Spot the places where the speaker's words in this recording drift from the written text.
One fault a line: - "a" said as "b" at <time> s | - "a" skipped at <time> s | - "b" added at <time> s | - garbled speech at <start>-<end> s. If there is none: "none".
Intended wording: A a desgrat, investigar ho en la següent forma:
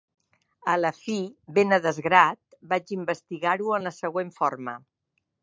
- "la fi ben" added at 0.8 s
- "vaig" added at 2.7 s